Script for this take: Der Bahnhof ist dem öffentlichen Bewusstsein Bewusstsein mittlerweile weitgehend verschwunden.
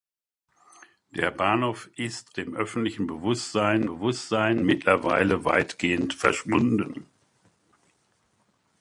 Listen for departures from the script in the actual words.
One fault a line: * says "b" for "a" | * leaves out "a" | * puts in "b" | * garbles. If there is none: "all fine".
all fine